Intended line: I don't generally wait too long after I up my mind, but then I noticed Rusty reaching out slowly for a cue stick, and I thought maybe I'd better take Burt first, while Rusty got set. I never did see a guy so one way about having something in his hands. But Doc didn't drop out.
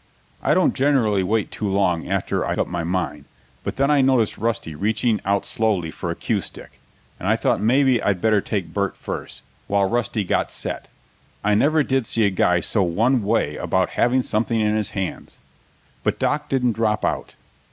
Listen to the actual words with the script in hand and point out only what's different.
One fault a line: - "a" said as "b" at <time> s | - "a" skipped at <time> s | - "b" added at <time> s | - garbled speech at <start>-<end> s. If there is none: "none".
none